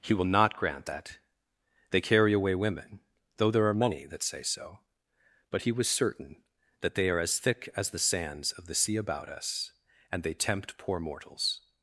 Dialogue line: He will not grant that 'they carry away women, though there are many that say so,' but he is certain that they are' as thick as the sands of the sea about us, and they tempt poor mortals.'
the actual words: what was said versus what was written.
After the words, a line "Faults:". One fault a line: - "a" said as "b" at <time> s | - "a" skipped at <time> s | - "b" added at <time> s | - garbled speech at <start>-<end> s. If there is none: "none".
He will not grant that 'they carry away women, though there are many that say so,' but he was certain that they are' as thick as the sands of the sea about us, and they tempt poor mortals.'
Faults:
- "is" said as "was" at 5.7 s